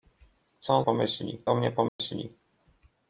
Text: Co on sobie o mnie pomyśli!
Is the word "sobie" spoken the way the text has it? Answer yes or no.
no